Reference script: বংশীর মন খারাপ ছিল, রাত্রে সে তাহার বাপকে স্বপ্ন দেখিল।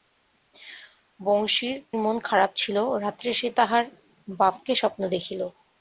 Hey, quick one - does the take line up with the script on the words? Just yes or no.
yes